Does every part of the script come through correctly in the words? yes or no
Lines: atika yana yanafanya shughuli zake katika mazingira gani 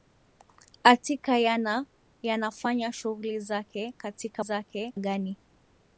no